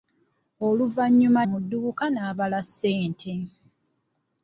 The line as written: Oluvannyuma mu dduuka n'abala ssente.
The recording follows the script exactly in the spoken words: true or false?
true